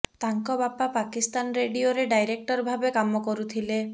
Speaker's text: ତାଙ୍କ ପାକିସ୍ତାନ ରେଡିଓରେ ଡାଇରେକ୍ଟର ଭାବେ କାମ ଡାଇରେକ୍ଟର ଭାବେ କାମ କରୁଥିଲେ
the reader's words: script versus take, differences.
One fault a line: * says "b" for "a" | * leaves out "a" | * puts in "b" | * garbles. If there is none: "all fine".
* puts in "ବାପା"
* leaves out "ଡାଇରେକ୍ଟର ଭାବେ କାମ"